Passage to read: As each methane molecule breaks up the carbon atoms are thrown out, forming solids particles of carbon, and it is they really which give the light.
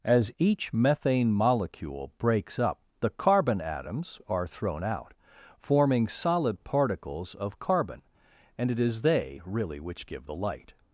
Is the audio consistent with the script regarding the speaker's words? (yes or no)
no